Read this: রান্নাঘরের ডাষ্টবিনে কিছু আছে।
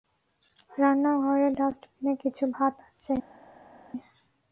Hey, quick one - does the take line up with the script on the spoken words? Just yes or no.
no